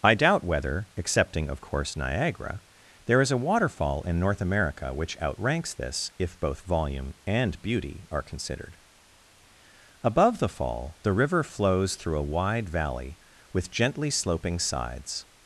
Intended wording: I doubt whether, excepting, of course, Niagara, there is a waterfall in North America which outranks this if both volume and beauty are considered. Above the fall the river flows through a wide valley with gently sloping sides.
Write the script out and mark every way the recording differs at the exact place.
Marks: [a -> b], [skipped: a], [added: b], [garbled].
I doubt whether, excepting, of course, Niagara, there is a waterfall in North America which outranks this if both volume and beauty are considered. Above the fall the river flows through a wide valley with gently sloping sides.